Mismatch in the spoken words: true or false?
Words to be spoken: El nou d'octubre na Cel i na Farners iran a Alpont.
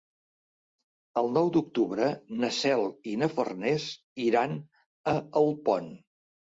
false